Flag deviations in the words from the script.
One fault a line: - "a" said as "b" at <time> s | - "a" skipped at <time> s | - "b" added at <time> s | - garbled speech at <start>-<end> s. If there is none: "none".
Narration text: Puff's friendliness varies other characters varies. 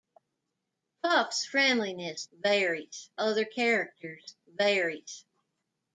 none